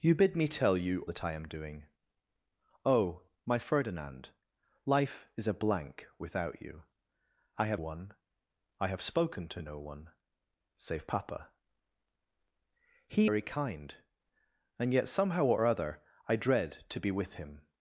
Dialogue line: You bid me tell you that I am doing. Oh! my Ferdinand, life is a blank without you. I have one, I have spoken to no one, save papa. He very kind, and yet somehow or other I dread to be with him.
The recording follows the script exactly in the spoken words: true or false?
true